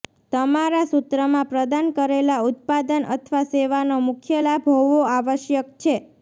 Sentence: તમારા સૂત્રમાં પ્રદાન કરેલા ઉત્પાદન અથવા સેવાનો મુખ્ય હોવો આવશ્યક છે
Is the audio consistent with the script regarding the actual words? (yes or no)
no